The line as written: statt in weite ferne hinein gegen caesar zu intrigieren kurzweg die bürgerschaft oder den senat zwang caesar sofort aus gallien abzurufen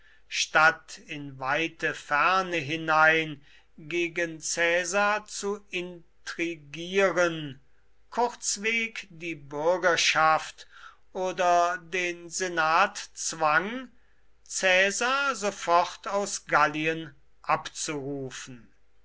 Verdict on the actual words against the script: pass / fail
pass